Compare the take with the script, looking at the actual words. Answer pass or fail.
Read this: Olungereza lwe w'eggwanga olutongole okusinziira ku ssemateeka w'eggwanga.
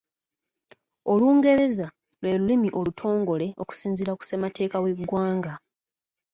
fail